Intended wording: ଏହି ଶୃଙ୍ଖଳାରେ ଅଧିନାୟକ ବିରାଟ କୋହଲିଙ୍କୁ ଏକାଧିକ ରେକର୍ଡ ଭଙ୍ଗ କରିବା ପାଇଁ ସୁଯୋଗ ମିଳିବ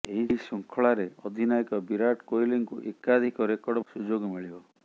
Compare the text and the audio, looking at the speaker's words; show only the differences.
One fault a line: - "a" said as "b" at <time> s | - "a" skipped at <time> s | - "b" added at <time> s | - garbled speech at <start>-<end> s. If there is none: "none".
- "ଭଙ୍ଗ କରିବା ପାଇଁ" skipped at 3.9 s